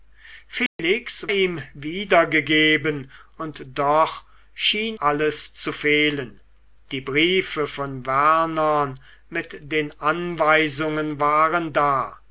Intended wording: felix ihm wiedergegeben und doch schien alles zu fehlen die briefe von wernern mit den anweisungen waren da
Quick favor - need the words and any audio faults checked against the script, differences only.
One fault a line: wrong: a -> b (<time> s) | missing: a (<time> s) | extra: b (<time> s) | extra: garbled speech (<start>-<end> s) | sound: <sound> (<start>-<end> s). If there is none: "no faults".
sound: dropout (0.7-0.8 s)